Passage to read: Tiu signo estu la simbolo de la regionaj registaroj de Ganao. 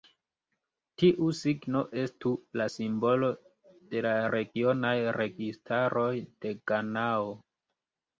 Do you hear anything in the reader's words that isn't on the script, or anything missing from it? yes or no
no